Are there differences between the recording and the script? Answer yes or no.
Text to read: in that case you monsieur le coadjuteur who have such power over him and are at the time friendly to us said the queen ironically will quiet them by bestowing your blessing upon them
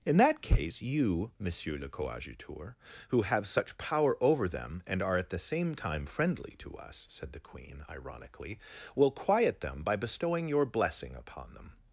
yes